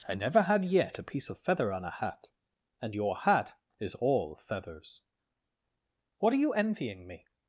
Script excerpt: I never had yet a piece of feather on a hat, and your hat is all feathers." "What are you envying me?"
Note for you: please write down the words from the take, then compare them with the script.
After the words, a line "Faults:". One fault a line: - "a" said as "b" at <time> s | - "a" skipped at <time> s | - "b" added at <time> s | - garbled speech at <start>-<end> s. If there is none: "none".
I never had yet a piece of feather on a hat, and your hat is all feathers." "What are you envying me?"
Faults:
none